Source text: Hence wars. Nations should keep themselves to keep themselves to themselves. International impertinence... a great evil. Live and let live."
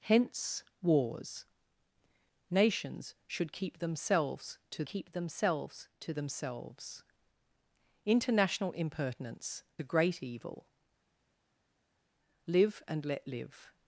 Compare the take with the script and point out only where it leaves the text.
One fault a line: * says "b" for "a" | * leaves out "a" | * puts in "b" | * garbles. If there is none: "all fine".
all fine